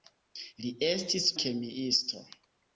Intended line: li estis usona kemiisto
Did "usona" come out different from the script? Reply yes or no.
yes